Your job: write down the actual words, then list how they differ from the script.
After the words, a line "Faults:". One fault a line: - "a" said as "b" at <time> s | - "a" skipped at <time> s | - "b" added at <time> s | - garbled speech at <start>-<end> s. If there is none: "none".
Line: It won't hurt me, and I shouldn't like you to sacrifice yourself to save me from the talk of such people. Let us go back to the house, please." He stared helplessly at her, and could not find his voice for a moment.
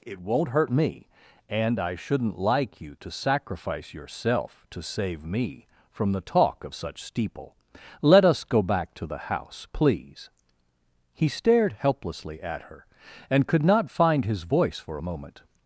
It won't hurt me, and I shouldn't like you to sacrifice yourself to save me from the talk of such steeple. Let us go back to the house, please." He stared helplessly at her, and could not find his voice for a moment.
Faults:
- "people" said as "steeple" at 7.0 s